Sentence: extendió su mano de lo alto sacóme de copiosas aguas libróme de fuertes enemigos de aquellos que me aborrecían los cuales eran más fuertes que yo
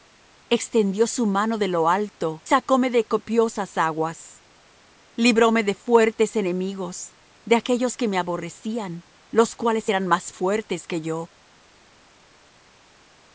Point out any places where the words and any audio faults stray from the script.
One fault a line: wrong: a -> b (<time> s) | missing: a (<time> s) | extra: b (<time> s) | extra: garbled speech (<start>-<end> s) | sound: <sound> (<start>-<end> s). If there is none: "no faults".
no faults